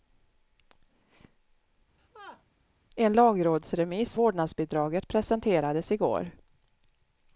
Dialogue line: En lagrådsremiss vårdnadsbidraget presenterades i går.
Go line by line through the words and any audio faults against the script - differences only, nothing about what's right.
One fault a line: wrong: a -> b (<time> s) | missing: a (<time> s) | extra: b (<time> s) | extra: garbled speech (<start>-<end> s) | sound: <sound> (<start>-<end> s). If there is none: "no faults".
sound: laugh (2.0-2.4 s)